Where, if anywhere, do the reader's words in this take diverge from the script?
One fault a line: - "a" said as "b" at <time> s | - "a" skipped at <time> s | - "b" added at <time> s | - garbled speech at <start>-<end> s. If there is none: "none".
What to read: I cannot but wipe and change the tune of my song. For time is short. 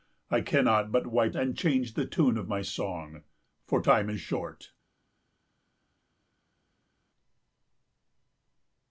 none